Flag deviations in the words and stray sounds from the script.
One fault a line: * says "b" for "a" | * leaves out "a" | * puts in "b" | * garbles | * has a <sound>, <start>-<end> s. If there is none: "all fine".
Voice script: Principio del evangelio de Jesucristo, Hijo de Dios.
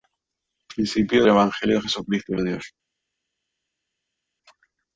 * leaves out "del"
* leaves out "Hijo"